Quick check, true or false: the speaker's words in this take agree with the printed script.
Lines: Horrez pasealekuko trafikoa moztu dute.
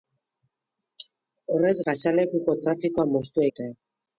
true